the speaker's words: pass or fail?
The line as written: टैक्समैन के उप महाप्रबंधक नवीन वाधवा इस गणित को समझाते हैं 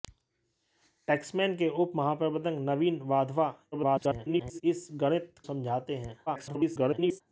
fail